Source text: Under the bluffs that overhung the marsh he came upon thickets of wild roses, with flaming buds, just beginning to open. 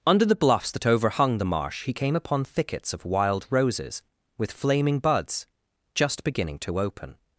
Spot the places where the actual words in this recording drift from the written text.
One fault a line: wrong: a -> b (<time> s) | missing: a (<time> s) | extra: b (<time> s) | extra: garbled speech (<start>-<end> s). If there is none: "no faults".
no faults